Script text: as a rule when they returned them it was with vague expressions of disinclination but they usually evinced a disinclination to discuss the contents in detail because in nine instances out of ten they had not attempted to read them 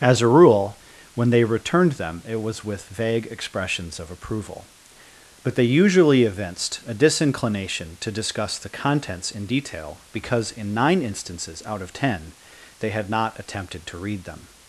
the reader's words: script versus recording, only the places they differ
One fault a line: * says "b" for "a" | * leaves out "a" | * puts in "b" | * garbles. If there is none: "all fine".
* says "approval" for "disinclination"